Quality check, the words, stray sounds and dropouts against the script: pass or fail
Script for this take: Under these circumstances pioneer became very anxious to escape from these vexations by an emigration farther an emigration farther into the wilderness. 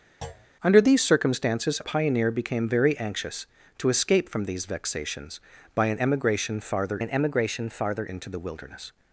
fail